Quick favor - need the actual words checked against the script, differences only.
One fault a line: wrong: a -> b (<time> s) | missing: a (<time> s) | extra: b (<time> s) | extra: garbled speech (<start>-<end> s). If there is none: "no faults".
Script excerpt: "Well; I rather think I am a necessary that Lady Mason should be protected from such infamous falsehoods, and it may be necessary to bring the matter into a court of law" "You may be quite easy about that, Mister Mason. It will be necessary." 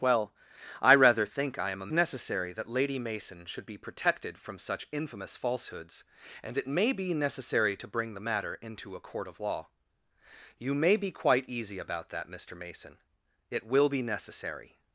no faults